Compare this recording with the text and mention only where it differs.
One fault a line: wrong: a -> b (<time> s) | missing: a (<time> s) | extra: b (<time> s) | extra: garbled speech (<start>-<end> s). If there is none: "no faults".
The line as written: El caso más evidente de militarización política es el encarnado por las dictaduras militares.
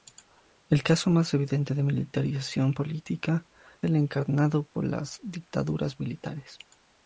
missing: es (3.5 s)